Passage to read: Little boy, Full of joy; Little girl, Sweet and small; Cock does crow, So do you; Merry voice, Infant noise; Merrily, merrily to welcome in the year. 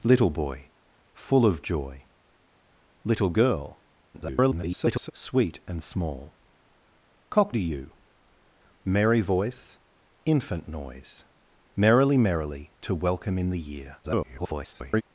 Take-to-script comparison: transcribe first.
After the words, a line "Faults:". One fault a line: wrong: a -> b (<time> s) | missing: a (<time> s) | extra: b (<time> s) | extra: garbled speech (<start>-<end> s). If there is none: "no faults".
Little boy, Full of joy; Little girl, [garbled] Sweet and small; Cock do you; Merry voice, Infant noise; Merrily, merrily to welcome in the year. [garbled]
Faults:
extra: garbled speech (4.1-5.1 s)
missing: does crow So (7.5 s)
extra: garbled speech (14.0-15.0 s)